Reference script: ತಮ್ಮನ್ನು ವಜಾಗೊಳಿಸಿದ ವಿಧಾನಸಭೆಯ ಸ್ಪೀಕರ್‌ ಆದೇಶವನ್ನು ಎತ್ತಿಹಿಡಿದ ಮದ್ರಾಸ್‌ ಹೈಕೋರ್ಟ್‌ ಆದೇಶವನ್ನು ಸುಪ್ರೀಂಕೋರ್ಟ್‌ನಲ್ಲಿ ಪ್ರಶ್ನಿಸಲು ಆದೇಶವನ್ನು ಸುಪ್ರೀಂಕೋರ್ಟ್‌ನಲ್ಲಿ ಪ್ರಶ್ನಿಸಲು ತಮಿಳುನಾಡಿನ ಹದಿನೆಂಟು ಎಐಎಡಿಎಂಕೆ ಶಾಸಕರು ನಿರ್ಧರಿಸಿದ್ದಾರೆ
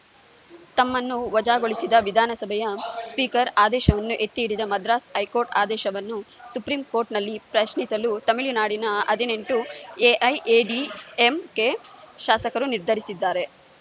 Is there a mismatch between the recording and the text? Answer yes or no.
yes